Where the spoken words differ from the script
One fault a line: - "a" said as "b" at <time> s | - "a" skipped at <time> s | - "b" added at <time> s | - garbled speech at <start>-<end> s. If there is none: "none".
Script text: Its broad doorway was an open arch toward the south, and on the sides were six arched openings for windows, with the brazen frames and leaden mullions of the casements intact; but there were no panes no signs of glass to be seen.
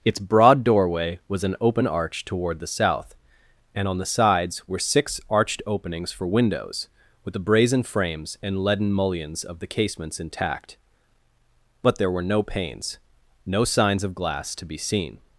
none